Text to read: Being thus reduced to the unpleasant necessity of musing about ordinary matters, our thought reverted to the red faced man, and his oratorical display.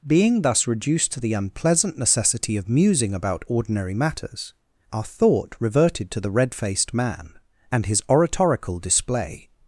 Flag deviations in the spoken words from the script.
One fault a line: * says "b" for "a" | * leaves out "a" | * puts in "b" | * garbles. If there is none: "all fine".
all fine